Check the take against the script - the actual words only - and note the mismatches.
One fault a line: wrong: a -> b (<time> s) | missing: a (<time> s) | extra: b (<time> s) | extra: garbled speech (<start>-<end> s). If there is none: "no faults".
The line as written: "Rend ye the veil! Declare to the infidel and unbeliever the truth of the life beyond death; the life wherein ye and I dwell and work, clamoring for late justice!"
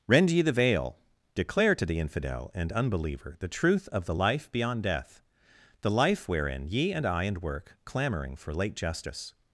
missing: dwell (7.2 s)